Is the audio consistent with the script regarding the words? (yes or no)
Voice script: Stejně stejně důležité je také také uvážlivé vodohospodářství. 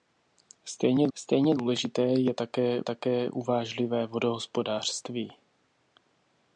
yes